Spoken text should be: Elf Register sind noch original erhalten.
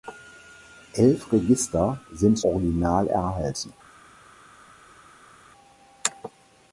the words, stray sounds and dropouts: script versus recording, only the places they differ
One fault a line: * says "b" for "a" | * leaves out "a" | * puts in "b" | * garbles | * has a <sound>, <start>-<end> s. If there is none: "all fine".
* leaves out "noch"